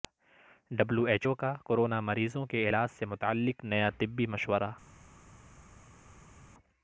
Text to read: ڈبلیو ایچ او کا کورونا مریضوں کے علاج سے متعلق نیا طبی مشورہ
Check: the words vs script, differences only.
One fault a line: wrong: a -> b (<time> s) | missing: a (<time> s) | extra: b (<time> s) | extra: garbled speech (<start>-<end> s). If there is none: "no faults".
no faults